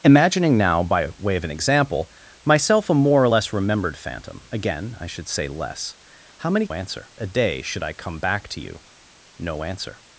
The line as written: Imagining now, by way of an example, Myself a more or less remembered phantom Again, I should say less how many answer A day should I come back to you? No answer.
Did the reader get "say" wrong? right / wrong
right